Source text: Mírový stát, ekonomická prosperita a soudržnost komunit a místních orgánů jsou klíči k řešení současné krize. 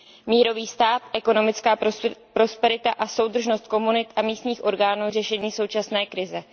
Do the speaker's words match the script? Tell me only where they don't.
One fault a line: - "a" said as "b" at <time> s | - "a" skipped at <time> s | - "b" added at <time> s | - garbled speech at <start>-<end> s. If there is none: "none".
- "jsou klíči" skipped at 5.1 s